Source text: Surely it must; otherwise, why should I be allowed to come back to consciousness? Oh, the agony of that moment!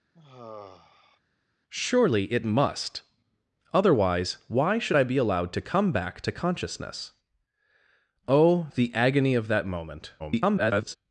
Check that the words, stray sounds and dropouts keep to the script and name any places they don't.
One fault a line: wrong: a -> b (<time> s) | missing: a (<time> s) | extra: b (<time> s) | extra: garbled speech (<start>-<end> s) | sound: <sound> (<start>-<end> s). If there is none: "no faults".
sound: sigh (0.1-1.2 s)
extra: garbled speech (10.2-11.0 s)